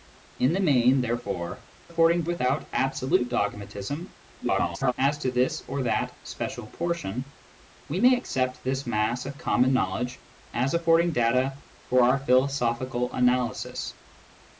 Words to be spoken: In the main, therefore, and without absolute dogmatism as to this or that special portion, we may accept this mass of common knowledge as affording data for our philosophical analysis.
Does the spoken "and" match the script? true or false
false